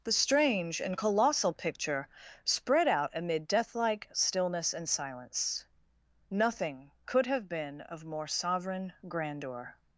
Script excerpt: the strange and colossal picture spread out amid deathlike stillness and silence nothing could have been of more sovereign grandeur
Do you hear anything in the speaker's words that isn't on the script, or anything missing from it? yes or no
no